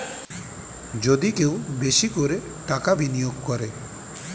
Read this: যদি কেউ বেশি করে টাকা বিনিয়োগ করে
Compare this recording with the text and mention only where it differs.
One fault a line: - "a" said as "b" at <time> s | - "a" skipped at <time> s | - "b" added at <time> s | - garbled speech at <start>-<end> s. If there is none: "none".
none